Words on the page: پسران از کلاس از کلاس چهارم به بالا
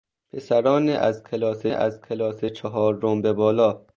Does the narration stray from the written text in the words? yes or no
no